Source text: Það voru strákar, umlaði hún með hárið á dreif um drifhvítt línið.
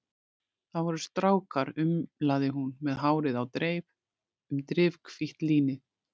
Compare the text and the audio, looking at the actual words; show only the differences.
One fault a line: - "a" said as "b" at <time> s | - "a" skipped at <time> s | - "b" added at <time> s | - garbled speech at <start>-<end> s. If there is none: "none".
none